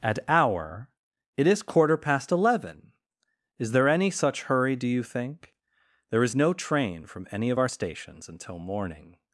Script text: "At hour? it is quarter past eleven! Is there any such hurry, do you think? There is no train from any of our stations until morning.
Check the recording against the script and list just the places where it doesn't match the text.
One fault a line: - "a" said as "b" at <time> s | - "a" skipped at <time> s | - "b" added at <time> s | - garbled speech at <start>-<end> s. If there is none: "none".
none